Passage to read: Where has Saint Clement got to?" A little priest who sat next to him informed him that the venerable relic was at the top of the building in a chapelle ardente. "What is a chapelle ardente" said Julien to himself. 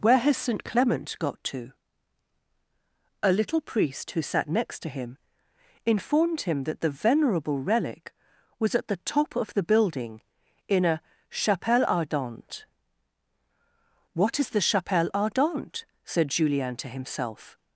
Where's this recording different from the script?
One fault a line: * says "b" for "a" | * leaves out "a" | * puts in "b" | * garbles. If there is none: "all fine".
* says "the" for "a"